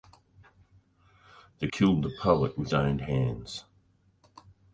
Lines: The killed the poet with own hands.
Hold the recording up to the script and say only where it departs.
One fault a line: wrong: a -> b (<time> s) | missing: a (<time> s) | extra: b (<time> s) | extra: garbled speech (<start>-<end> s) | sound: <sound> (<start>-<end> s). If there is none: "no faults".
no faults